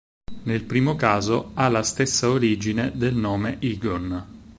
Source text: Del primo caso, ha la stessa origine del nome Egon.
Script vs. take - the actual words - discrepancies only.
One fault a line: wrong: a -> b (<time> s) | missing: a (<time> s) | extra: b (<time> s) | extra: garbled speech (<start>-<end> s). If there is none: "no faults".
wrong: Del -> Nel (0.5 s)